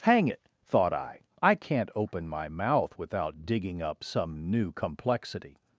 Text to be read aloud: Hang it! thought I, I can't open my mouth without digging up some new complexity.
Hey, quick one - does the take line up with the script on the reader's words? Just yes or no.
yes